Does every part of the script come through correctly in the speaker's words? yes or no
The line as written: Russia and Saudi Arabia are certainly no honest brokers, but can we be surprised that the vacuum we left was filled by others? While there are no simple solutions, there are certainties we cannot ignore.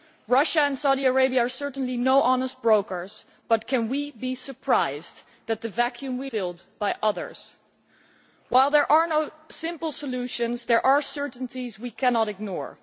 no